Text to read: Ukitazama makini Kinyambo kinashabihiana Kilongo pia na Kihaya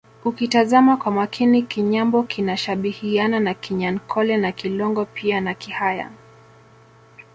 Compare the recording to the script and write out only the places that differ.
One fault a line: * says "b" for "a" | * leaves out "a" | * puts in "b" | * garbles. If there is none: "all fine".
* puts in "kwa"
* puts in "na Kinyankole na"